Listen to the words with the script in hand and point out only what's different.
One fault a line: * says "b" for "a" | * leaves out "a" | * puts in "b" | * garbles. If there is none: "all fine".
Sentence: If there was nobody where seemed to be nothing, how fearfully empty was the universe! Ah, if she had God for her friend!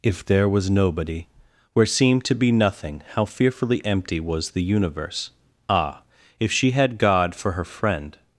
all fine